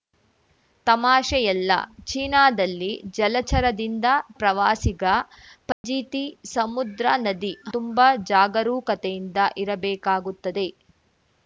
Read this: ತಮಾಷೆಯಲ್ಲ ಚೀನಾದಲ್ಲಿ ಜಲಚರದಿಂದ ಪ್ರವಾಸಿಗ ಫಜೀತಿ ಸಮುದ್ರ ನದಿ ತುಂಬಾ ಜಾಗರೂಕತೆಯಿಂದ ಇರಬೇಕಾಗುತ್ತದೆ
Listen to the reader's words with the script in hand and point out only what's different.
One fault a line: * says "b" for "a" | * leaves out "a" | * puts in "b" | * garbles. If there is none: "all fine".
all fine